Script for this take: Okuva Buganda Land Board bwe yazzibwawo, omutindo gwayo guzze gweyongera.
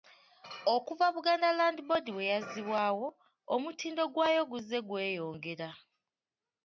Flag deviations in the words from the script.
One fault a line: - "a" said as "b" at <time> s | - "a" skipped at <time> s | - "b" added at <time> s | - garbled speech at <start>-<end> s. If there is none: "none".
none